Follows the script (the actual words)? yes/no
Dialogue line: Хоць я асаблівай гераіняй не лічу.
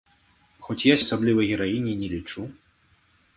yes